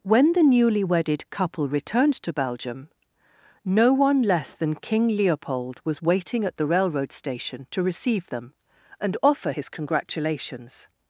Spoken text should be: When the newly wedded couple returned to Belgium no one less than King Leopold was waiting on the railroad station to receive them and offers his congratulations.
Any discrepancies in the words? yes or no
yes